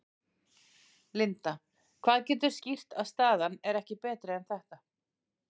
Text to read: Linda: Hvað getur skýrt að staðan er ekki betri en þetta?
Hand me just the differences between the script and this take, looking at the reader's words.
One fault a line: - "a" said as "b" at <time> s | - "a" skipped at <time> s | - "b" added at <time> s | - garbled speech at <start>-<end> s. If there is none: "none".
none